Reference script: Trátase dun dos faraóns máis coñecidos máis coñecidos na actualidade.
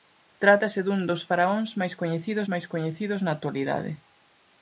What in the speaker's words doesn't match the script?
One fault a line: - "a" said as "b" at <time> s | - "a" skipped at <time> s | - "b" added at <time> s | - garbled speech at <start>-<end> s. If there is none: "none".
none